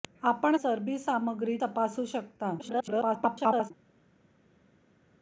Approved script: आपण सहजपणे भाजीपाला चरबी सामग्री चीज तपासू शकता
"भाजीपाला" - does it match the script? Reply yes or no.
no